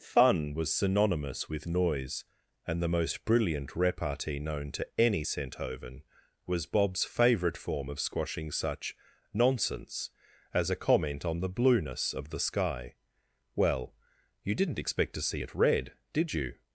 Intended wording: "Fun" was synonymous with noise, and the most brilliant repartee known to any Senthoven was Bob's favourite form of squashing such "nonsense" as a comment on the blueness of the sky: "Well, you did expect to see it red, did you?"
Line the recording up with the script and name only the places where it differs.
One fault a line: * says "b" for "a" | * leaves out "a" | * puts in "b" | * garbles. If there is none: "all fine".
* says "didn't" for "did"